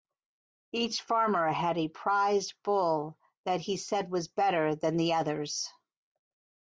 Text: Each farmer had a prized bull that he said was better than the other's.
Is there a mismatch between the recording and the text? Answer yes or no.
no